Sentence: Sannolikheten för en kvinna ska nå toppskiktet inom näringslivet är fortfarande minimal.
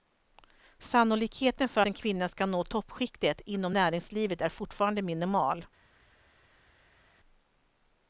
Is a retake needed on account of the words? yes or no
no